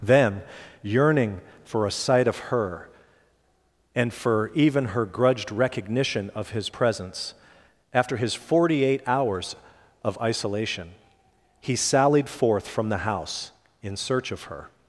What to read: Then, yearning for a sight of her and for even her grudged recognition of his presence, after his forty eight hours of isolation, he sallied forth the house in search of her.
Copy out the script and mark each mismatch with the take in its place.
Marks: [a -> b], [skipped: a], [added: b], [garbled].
Then, yearning for a sight of her and for even her grudged recognition of his presence, after his forty eight hours of isolation, he sallied forth [added: from] the house in search of her.